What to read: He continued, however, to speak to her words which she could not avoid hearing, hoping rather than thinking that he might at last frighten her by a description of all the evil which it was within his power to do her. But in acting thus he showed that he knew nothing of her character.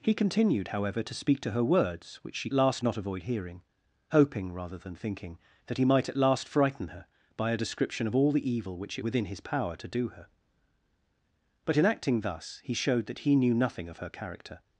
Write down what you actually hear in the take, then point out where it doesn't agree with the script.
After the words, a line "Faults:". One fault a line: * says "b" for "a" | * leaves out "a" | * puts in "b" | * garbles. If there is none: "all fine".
He continued, however, to speak to her words which she last not avoid hearing, hoping rather than thinking that he might at last frighten her by a description of all the evil which it within his power to do her. But in acting thus he showed that he knew nothing of her character.
Faults:
* says "last" for "could"
* leaves out "was"